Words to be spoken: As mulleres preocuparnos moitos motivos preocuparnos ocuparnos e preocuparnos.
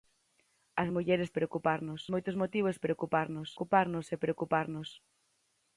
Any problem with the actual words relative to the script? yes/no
no